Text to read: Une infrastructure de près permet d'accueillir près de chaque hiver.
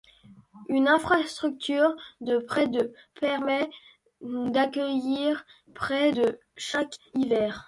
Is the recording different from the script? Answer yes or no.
yes